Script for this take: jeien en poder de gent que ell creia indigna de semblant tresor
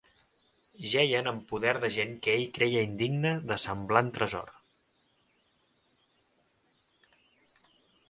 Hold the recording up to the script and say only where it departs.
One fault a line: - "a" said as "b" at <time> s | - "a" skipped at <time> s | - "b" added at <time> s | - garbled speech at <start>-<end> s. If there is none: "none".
none